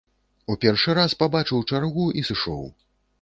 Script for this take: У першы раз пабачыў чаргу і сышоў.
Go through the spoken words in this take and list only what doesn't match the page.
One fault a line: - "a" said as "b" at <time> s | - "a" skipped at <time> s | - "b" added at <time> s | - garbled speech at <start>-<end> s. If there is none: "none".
none